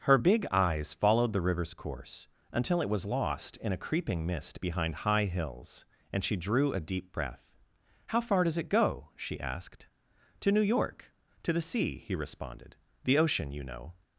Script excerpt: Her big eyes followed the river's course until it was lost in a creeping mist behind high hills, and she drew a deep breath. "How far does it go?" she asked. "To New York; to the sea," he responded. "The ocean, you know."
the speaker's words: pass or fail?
pass